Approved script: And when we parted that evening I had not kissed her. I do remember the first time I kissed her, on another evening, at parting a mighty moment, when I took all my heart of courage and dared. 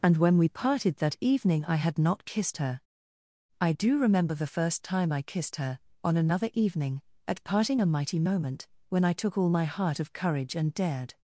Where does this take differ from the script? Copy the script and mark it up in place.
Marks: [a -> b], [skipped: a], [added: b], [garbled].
And when we parted that evening I had not kissed her. I do remember the first time I kissed her, on another evening, at parting a mighty moment, when I took all my heart of courage and dared.